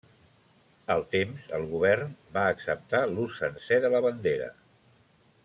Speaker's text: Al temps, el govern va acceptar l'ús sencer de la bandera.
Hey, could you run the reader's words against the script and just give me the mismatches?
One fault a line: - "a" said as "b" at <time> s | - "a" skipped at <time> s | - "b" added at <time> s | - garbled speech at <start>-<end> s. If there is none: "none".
none